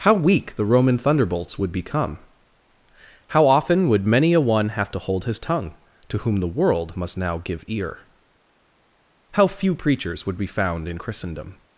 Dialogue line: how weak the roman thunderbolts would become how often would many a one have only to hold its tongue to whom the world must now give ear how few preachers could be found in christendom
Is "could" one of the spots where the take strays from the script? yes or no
yes